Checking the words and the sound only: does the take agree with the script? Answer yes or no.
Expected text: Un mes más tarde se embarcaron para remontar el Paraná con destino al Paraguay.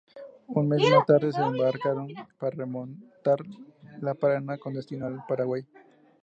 yes